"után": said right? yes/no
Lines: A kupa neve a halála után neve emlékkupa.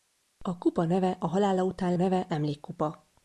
yes